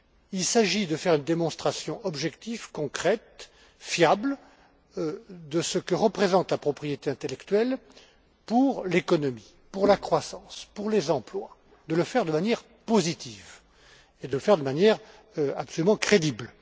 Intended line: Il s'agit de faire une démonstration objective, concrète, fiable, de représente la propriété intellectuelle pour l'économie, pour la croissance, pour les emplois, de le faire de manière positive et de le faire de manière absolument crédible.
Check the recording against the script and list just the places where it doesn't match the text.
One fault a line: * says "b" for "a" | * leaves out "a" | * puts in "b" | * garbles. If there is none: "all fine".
* puts in "ce que"